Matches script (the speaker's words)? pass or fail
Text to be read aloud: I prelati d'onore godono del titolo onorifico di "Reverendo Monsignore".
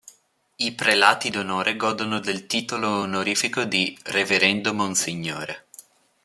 pass